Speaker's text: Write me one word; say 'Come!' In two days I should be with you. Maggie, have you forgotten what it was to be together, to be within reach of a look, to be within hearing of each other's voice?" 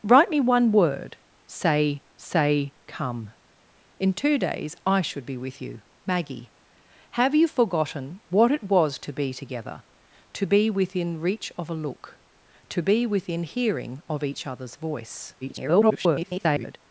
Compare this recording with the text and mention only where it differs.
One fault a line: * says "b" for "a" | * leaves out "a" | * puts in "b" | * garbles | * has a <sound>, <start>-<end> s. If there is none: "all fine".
* puts in "say"
* garbles